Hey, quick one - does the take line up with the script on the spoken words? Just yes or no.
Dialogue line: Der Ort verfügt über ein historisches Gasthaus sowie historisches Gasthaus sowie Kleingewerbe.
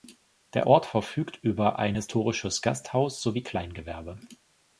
no